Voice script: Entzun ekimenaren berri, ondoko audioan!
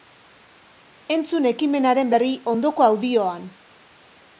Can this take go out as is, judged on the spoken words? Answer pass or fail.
pass